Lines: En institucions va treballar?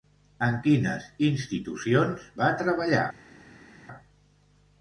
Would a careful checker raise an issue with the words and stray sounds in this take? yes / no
yes